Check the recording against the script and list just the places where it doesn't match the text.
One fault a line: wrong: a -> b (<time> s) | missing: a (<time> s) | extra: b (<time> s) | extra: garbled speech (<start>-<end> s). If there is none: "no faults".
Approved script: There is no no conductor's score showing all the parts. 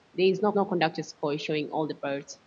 no faults